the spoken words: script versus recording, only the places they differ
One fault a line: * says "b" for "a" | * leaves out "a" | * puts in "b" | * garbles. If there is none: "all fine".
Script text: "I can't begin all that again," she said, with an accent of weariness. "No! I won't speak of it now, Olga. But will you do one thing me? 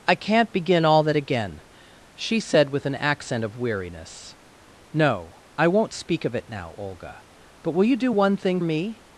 all fine